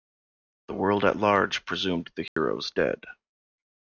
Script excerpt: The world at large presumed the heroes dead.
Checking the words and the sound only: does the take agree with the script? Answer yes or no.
no